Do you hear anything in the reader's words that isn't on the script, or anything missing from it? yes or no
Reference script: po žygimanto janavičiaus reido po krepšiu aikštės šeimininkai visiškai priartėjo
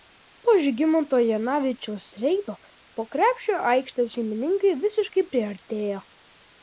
no